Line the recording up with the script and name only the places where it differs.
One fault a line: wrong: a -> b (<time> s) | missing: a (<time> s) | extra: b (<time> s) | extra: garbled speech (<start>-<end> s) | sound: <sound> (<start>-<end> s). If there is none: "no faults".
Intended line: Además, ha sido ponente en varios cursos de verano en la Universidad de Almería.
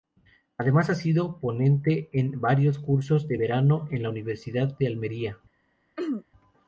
sound: throat clearing (6.0-6.2 s)